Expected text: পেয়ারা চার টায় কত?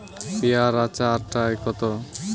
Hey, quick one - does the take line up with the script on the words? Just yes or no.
yes